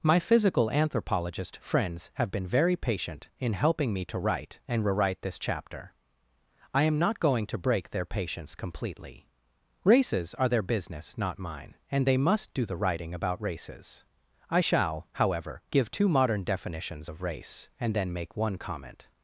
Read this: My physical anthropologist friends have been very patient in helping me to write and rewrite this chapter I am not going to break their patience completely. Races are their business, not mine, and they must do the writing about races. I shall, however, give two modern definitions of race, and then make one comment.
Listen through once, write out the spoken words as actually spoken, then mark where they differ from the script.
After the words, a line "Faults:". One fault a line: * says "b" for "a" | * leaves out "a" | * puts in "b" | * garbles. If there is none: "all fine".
My physical anthropologist friends have been very patient in helping me to write and rewrite this chapter I am not going to break their patience completely. Races are their business, not mine, and they must do the writing about races. I shall, however, give two modern definitions of race, and then make one comment.
Faults:
all fine